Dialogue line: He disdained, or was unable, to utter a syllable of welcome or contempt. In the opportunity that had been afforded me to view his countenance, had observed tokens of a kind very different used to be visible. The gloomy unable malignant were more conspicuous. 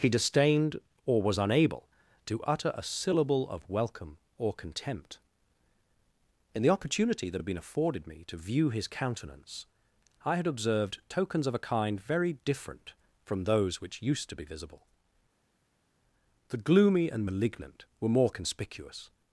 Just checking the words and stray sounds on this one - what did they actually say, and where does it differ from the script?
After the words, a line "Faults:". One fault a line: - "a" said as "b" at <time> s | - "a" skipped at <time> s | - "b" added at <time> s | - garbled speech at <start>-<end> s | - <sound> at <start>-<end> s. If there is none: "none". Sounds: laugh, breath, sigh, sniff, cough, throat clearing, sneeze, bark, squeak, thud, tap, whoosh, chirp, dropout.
He disdained, or was unable, to utter a syllable of welcome or contempt. In the opportunity that had been afforded me to view his countenance, I had observed tokens of a kind very different from those which used to be visible. The gloomy and malignant were more conspicuous.
Faults:
- "I" added at 10.2 s
- "from those which" added at 13.2 s
- "unable" said as "and" at 17.1 s